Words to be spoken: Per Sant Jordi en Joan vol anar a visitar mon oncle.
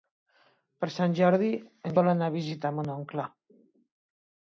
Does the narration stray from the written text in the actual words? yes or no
yes